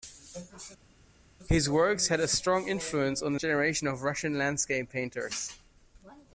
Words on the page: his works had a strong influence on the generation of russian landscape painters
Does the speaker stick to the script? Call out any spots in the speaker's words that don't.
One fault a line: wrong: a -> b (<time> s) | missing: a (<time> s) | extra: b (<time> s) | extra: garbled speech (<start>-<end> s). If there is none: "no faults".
no faults